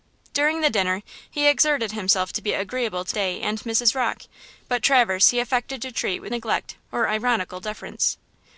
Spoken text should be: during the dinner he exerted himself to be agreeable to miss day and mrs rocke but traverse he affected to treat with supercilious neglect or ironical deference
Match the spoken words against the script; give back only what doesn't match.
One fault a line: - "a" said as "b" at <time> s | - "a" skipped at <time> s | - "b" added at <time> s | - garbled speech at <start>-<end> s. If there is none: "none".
- "miss" skipped at 3.2 s
- "supercilious" skipped at 6.3 s